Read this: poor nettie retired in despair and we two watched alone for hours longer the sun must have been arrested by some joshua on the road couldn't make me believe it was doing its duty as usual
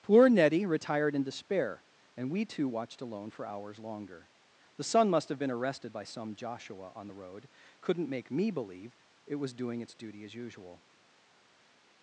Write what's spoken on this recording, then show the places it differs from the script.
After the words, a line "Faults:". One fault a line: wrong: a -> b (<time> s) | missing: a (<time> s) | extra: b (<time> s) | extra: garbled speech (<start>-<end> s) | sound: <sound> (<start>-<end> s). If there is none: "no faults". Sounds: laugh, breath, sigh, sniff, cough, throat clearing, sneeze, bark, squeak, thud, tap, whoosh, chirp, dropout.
poor nettie retired in despair and we two watched alone for hours longer the sun must have been arrested by some joshua on the road couldn't make me believe it was doing its duty as usual
Faults:
no faults